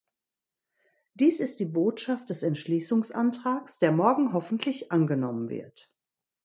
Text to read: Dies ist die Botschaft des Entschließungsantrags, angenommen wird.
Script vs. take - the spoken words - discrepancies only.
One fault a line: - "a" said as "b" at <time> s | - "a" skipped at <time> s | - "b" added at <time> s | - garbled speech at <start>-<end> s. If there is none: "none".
- "der morgen hoffentlich" added at 3.8 s